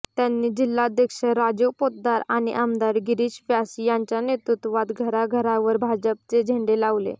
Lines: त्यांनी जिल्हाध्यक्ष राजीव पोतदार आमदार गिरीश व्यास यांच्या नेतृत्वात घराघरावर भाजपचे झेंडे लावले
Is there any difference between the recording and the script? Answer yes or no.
yes